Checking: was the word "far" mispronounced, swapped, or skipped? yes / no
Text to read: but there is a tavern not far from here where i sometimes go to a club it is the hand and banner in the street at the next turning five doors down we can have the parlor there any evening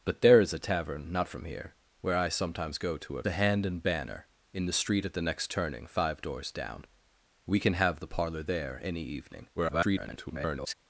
yes